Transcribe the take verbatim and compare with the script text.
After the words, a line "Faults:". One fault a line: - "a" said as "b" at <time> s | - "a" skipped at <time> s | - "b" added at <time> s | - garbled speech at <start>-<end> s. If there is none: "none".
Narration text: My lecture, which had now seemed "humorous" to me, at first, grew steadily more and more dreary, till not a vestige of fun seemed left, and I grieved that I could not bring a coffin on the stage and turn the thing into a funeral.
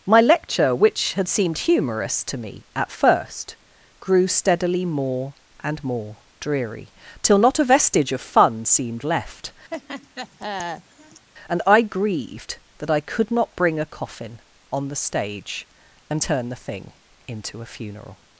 My lecture, which had seemed "humorous" to me, at first, grew steadily more and more dreary, till not a vestige of fun seemed left, and I grieved that I could not bring a coffin on the stage and turn the thing into a funeral.
Faults:
- "now" skipped at 1.3 s